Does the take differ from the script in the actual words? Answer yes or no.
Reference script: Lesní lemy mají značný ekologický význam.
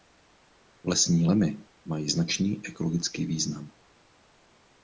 no